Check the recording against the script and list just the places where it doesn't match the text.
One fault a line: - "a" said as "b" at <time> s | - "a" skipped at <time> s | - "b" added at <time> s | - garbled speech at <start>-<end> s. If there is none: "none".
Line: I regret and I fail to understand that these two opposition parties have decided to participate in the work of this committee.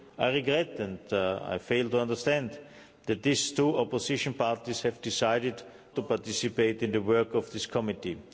none